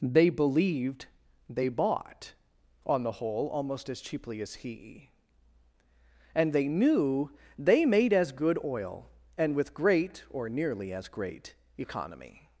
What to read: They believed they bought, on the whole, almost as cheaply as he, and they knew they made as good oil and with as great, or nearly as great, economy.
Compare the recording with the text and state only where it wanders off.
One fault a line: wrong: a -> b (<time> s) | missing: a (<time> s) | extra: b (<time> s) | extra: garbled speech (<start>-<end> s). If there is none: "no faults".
missing: as (9.7 s)